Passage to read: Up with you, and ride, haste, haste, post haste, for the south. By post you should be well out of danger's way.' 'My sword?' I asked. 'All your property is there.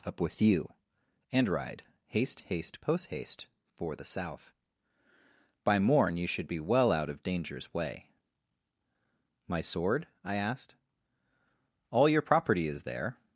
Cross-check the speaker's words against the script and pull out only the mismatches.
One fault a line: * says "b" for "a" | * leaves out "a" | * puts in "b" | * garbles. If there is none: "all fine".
* says "morn" for "post"